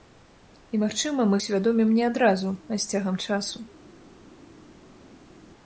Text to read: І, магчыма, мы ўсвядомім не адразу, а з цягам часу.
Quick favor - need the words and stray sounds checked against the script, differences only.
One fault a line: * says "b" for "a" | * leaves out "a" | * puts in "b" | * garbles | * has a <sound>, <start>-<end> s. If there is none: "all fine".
all fine